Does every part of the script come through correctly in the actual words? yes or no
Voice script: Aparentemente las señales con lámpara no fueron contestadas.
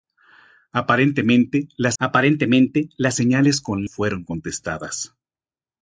no